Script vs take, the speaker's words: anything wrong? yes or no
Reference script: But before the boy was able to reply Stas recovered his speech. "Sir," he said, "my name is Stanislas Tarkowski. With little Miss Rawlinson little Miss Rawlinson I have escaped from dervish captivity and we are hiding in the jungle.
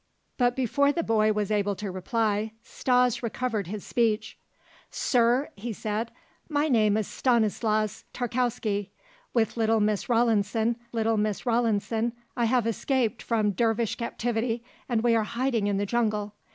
no